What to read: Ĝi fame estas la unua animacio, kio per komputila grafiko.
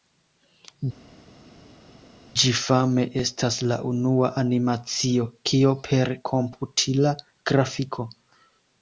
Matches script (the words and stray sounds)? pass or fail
pass